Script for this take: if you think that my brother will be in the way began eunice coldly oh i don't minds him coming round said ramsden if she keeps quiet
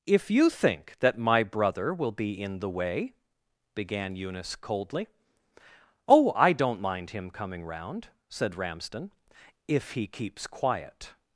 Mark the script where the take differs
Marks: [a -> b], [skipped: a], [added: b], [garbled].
if you think that my brother will be in the way began eunice coldly oh i don't [minds -> mind] him coming round said ramsden if [she -> he] keeps quiet